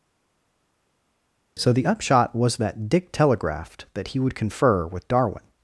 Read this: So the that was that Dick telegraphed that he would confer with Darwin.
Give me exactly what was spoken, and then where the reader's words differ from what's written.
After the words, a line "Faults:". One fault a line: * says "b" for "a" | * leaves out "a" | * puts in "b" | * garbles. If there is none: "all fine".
So the upshot was that Dick telegraphed that he would confer with Darwin.
Faults:
* says "upshot" for "that"